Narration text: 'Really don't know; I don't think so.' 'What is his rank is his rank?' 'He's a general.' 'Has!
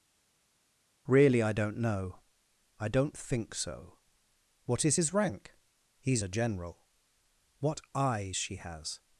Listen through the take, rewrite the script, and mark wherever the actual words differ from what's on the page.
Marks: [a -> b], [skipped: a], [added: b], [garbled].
'Really [added: I] don't know; I don't think so.' 'What is his rank [is his rank?' 'He's a general.' -> He's a general What eyes she] 'Has!